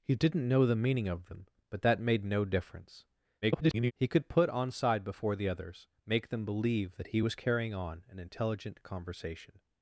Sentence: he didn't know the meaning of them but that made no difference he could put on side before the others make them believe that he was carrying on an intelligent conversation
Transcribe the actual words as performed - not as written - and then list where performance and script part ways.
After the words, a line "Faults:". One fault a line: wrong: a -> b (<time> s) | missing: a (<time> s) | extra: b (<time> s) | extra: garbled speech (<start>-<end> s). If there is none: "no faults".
he didn't know the meaning of them but that made no difference [garbled] he could put on side before the others make them believe that he was carrying on an intelligent conversation
Faults:
extra: garbled speech (3.4-3.9 s)